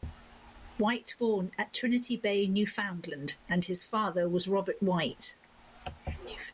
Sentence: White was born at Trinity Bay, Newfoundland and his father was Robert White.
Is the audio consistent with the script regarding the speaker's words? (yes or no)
no